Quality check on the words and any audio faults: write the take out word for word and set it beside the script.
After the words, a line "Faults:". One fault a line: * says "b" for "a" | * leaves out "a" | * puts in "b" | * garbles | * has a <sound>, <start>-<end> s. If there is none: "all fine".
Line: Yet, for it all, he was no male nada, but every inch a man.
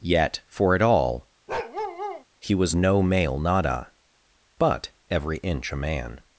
Yet, for it all, he was no male nada, but every inch a man.
Faults:
* has a bark, 1.5-2.2 s